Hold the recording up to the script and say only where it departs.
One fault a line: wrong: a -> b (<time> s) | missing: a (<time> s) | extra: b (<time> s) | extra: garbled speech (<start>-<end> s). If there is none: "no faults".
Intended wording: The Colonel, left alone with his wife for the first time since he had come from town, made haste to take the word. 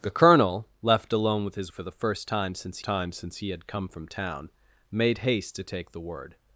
missing: wife (1.7 s)
extra: time since (2.8 s)